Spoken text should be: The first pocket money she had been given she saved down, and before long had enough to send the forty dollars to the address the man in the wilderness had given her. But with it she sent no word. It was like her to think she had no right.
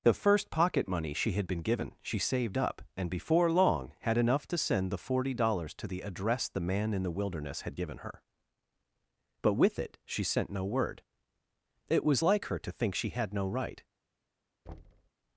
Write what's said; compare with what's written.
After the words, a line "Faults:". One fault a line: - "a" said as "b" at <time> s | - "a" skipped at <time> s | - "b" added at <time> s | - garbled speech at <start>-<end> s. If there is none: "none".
The first pocket money she had been given she saved up, and before long had enough to send the forty dollars to the address the man in the wilderness had given her. But with it she sent no word. It was like her to think she had no right.
Faults:
- "down" said as "up" at 2.6 s